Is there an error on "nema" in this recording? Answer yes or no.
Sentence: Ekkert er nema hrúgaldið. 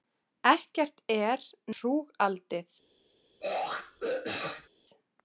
yes